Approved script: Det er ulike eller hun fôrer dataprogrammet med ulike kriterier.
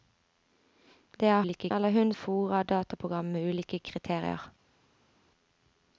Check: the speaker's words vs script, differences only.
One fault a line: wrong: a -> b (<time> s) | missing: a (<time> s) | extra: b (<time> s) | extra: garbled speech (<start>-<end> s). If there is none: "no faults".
no faults